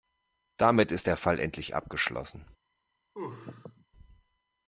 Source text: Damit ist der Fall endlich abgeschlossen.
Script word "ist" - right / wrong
right